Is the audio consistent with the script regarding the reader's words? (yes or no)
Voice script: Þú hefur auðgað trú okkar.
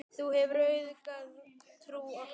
yes